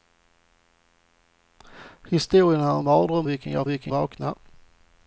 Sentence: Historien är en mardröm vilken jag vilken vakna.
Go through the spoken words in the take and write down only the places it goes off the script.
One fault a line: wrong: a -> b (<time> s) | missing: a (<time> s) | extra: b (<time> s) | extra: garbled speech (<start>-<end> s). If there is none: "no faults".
no faults